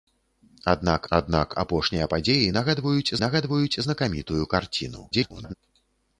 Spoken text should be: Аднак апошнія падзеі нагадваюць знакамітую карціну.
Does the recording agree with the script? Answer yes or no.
no